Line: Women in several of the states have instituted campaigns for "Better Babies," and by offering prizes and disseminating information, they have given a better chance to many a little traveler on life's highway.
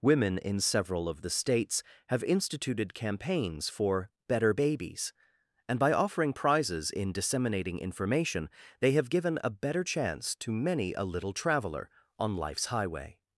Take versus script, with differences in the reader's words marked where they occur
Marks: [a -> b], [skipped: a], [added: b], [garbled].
Women in several of the states have instituted campaigns for "Better Babies," and by offering prizes [and -> in] disseminating information, they have given a better chance to many a little traveler on life's highway.